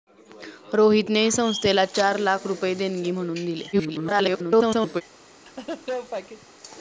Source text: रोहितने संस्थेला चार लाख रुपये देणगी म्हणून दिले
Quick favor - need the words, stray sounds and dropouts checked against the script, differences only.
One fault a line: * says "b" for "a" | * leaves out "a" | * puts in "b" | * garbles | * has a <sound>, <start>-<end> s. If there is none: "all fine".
* garbles
* has a laugh, 5.5-6.5 s